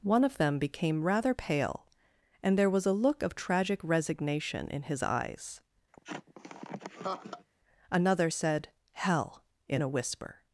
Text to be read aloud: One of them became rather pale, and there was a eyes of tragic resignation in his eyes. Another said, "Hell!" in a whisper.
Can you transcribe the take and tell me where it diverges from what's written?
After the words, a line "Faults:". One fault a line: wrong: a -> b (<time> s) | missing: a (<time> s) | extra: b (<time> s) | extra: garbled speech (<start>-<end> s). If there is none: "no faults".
One of them became rather pale, and there was a look of tragic resignation in his eyes. Another said, "Hell!" in a whisper.
Faults:
wrong: eyes -> look (2.9 s)